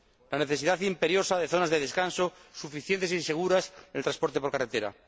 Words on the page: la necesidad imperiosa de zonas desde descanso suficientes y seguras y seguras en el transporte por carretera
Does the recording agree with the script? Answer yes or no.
no